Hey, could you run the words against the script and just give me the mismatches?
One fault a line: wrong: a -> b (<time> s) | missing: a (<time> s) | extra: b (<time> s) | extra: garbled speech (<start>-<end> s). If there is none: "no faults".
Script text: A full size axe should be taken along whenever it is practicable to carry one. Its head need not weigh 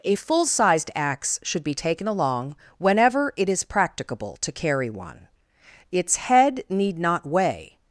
wrong: size -> sized (0.5 s)